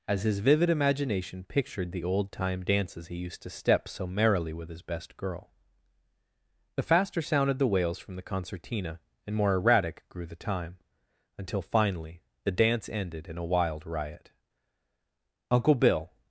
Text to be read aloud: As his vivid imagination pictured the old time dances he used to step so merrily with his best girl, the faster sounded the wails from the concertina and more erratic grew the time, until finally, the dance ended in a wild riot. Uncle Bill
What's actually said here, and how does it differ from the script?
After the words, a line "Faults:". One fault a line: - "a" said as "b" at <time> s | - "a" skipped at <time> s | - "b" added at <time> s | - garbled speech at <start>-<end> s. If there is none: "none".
As his vivid imagination pictured the old time dances he used to step so merrily with his best girl, the faster sounded the wails from the concertina and more erratic grew the time, until finally, the dance ended in a wild riot. Uncle Bill
Faults:
none